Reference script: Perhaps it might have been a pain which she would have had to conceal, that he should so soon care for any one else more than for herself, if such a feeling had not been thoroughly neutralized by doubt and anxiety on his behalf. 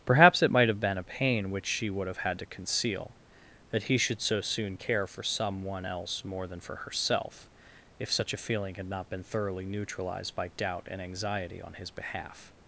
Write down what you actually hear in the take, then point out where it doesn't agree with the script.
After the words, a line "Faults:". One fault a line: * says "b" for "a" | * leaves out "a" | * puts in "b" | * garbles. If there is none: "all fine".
Perhaps it might have been a pain which she would have had to conceal, that he should so soon care for some one else more than for herself, if such a feeling had not been thoroughly neutralized by doubt and anxiety on his behalf.
Faults:
* says "some" for "any"